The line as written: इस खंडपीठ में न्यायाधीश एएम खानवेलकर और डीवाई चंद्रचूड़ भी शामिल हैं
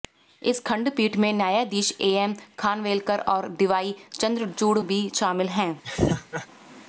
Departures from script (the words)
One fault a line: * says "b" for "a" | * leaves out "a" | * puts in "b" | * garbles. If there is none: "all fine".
all fine